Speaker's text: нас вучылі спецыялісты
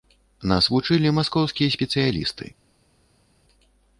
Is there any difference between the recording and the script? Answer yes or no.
yes